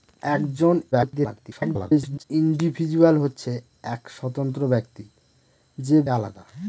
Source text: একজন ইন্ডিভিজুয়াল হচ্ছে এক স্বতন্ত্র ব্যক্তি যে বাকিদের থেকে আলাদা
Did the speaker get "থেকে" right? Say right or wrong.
wrong